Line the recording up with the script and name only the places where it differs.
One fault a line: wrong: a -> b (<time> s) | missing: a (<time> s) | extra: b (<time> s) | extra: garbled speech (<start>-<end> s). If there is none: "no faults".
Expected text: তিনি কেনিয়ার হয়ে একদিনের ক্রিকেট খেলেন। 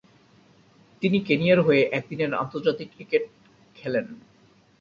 extra: আন্তর্জাতিক (2.3 s)